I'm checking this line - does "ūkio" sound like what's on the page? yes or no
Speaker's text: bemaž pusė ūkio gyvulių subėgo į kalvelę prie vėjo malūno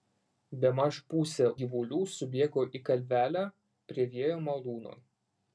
no